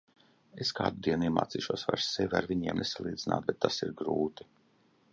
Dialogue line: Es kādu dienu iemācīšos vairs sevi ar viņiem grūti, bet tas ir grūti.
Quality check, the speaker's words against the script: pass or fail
fail